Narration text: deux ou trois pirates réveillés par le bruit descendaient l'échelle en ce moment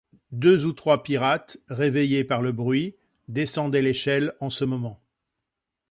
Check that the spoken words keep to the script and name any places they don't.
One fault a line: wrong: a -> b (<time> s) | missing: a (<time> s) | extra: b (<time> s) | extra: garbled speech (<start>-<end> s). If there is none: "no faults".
no faults